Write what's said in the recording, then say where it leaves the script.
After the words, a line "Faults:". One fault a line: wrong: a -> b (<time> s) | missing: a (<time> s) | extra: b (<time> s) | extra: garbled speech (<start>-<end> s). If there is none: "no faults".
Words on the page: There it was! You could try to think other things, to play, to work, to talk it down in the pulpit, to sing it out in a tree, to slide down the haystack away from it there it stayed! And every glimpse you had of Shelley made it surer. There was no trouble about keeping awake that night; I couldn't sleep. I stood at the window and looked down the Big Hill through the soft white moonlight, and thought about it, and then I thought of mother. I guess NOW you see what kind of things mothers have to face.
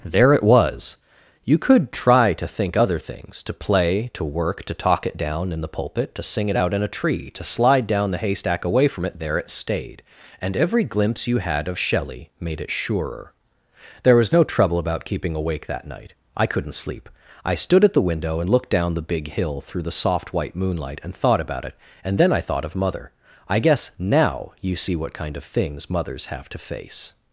There it was! You could try to think other things, to play, to work, to talk it down in the pulpit, to sing it out in a tree, to slide down the haystack away from it there it stayed! And every glimpse you had of Shelley made it surer. There was no trouble about keeping awake that night; I couldn't sleep. I stood at the window and looked down the Big Hill through the soft white moonlight, and thought about it, and then I thought of mother. I guess NOW you see what kind of things mothers have to face.
Faults:
no faults